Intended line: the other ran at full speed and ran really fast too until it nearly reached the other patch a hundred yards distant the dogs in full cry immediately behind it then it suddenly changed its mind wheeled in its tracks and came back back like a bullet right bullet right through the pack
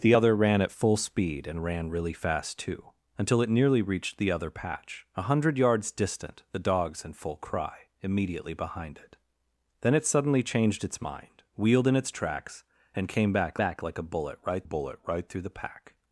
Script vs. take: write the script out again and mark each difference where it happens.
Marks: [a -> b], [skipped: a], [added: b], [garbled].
the other ran at full speed and ran really fast too until it nearly reached the other patch a hundred yards distant the dogs in full cry immediately behind it then it suddenly changed its mind wheeled in its tracks and came back back like a bullet right bullet right through the pack